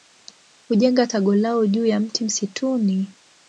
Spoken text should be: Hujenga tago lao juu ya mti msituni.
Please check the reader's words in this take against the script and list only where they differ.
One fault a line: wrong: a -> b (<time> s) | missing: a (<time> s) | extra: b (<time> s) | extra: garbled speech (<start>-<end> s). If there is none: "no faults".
no faults